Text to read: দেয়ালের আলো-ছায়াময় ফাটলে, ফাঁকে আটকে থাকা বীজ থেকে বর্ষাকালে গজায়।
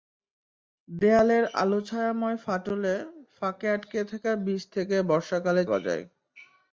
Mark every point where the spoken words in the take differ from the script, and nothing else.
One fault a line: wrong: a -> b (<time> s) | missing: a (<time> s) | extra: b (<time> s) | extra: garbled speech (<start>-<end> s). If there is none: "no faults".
no faults